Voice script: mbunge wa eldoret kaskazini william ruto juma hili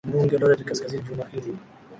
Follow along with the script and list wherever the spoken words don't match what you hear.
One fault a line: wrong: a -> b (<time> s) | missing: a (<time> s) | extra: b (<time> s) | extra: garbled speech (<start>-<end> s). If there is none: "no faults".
missing: wa (0.4 s)
missing: william ruto (1.0 s)